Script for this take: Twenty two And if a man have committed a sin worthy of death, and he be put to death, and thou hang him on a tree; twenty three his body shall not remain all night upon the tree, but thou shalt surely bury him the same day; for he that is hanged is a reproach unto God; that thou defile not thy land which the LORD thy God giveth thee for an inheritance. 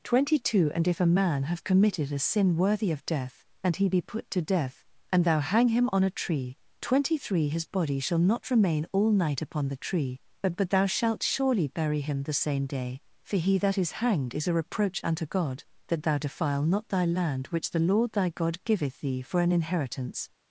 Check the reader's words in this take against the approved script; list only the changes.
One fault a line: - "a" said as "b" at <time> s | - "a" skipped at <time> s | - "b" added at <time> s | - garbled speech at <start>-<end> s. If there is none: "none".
- "but" added at 10.6 s